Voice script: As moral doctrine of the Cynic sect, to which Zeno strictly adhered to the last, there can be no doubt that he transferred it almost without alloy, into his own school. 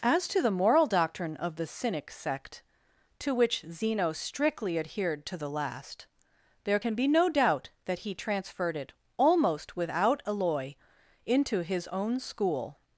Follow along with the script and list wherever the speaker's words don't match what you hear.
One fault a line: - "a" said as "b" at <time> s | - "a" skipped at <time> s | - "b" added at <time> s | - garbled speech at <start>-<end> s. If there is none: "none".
- "to the" added at 0.3 s